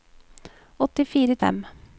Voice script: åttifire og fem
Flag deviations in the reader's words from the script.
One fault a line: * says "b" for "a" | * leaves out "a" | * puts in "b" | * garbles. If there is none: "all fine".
all fine